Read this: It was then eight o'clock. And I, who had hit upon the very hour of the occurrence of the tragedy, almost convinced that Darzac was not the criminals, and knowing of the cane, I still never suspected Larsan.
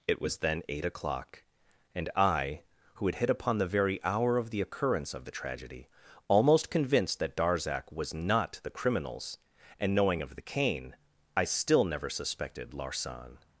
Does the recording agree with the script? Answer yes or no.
yes